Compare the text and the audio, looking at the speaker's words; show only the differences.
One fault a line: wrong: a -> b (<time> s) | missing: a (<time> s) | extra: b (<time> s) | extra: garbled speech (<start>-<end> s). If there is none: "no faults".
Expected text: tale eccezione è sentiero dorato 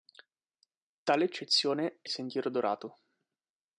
no faults